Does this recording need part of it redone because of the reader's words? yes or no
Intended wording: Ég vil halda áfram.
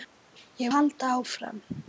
yes